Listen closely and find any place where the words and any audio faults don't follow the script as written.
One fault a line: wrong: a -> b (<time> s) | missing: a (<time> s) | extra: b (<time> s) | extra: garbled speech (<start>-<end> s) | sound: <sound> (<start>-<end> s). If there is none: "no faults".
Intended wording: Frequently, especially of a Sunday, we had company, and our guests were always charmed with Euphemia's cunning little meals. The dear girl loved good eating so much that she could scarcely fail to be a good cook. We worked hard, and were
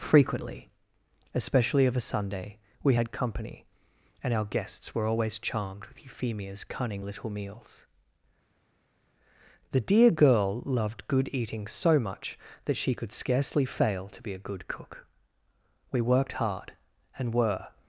no faults